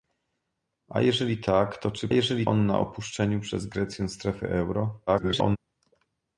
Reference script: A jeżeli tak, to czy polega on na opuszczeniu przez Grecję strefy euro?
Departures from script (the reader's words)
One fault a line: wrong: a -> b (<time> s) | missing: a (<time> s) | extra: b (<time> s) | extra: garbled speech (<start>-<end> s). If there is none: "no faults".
wrong: polega -> jeżeli (2.1 s)
extra: garbled speech (5.1-5.6 s)